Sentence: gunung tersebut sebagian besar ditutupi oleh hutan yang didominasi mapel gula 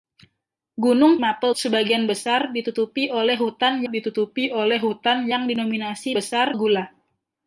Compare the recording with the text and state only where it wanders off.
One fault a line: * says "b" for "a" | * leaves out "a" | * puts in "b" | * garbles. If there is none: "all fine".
* says "mapel" for "tersebut"
* puts in "ditutupi oleh hutan"
* says "besar" for "mapel"